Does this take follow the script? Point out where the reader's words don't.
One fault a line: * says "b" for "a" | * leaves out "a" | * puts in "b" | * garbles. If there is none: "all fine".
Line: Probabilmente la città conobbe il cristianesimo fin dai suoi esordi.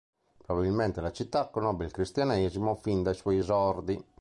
all fine